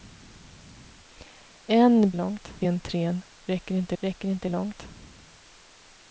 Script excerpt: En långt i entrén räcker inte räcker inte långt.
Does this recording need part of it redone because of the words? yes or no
no